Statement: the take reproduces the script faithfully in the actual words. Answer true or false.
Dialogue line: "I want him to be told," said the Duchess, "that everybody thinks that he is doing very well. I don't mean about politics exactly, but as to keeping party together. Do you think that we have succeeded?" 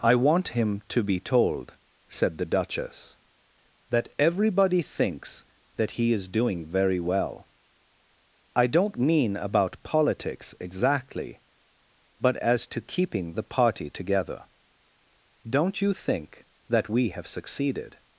false